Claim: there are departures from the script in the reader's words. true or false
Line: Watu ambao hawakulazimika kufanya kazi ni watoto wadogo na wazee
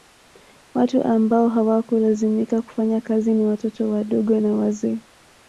false